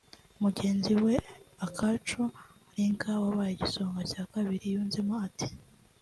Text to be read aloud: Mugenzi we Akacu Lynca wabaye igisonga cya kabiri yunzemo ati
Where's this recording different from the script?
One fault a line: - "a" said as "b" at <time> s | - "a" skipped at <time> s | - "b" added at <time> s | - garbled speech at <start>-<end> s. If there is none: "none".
none